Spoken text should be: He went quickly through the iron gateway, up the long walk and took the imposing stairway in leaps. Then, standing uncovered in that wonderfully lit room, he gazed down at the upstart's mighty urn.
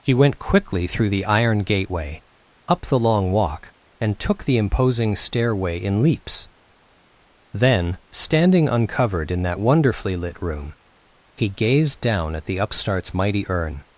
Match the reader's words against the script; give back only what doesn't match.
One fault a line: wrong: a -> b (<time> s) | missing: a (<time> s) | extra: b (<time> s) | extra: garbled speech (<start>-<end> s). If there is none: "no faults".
no faults